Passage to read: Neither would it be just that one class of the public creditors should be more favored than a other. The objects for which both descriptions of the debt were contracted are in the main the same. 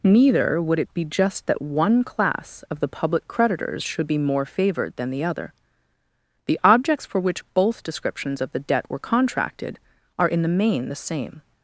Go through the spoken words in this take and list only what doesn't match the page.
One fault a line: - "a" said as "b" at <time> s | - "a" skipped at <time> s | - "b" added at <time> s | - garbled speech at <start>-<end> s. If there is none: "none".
- "a" said as "the" at 5.1 s